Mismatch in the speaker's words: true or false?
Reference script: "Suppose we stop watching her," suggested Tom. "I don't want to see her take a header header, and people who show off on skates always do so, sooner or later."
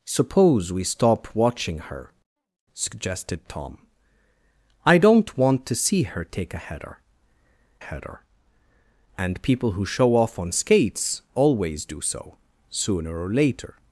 false